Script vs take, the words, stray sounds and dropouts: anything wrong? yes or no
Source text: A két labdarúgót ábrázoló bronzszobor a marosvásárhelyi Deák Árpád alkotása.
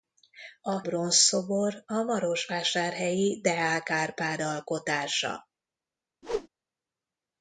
yes